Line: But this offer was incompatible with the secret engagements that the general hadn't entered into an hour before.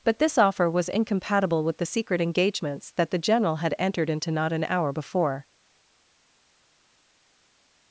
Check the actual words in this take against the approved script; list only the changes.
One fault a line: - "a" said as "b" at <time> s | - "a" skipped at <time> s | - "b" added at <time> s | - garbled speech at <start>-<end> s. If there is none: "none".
- "hadn't" said as "had" at 3.6 s
- "not" added at 4.3 s